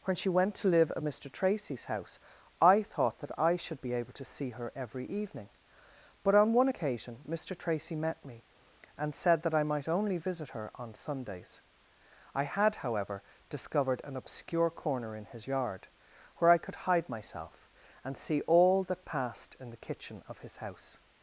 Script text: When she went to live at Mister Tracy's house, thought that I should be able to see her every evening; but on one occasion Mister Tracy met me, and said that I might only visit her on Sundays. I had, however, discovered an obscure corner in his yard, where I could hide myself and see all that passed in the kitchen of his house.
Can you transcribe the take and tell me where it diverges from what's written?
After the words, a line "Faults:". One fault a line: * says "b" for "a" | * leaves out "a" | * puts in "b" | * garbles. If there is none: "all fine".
When she went to live at Mister Tracy's house, I thought that I should be able to see her every evening; but on one occasion Mister Tracy met me, and said that I might only visit her on Sundays. I had, however, discovered an obscure corner in his yard, where I could hide myself and see all that passed in the kitchen of his house.
Faults:
* puts in "I"